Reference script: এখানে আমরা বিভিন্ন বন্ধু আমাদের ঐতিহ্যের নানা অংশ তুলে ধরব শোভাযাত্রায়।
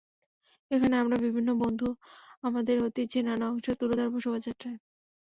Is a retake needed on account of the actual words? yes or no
no